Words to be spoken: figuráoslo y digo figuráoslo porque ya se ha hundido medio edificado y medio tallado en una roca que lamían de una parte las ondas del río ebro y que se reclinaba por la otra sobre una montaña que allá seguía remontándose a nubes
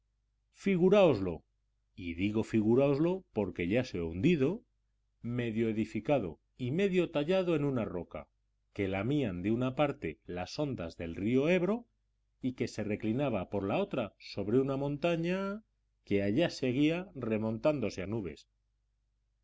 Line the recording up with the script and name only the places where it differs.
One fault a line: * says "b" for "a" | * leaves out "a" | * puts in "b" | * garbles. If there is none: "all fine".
all fine